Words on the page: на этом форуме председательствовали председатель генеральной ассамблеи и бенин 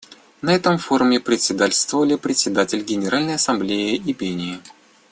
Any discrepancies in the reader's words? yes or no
no